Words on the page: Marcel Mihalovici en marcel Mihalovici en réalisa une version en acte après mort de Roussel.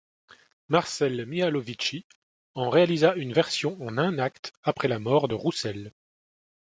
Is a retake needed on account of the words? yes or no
yes